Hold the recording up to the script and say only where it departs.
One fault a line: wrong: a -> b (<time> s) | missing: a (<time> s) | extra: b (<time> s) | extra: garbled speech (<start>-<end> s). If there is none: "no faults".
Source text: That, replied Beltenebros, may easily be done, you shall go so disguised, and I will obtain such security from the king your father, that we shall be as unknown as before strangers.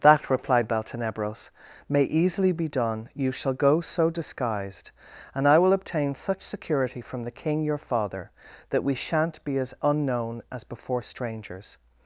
wrong: shall -> shan't (8.9 s)